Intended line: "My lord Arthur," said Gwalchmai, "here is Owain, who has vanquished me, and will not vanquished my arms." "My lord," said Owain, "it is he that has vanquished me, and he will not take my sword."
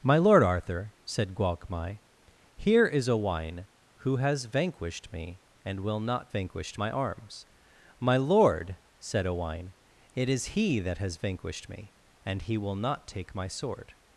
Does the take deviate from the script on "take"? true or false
false